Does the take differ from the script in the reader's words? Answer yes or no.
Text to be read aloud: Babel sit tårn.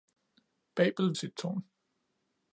no